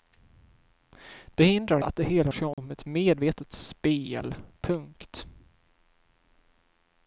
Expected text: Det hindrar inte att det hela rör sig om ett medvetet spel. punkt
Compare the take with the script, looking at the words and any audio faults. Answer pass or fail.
fail